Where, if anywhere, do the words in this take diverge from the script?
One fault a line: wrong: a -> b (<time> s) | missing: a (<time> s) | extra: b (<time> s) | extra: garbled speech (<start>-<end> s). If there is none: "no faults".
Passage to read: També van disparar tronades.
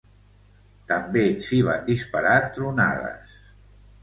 extra: s'hi (1.5 s)